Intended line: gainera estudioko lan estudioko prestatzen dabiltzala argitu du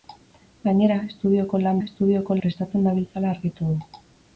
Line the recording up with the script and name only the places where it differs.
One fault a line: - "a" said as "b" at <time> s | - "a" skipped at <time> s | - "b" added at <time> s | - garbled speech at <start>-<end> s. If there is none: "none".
none